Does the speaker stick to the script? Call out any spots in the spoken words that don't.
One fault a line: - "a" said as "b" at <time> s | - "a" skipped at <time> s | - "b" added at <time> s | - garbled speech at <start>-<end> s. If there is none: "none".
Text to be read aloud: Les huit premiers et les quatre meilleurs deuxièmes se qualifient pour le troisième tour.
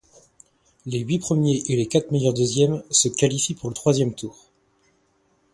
none